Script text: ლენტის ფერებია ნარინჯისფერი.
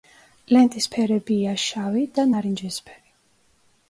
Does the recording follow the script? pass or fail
fail